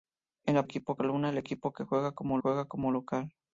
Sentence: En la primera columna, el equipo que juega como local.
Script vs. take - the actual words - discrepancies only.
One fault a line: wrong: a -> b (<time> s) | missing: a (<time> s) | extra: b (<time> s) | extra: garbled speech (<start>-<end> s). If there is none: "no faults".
wrong: primera -> equipo (0.6 s)
extra: juega como (2.4 s)